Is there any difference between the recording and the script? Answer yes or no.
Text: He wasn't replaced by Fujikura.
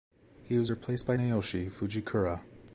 yes